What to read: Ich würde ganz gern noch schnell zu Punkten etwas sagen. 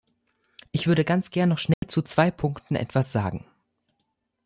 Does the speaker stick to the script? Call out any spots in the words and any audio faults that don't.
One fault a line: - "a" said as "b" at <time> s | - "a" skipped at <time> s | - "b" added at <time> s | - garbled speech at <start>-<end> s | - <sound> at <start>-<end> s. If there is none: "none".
- dropout at 1.7-1.8 s
- "zwei" added at 2.0 s